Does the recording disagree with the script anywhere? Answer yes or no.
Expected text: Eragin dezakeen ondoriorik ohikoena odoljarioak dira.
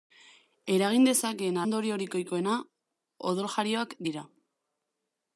no